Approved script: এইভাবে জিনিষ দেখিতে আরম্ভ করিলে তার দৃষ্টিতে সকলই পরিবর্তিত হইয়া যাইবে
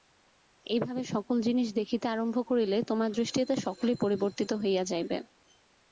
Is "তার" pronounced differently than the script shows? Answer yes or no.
yes